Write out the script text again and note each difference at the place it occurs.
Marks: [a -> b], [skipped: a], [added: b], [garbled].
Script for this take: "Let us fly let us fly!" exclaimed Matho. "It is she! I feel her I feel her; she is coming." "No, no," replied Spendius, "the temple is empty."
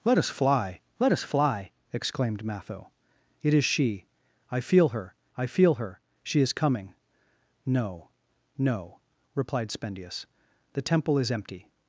"Let us fly let us fly!" exclaimed Matho. "It is she! I feel her I feel her; she is coming." "No, no," replied Spendius, "the temple is empty."